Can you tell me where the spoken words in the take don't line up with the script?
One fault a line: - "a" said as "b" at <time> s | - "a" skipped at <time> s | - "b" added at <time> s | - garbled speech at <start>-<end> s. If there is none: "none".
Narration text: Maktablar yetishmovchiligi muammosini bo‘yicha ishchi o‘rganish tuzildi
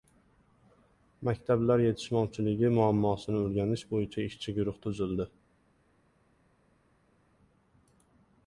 - "o‘rganish" added at 3.4 s
- "o‘rganish" said as "guruh" at 4.6 s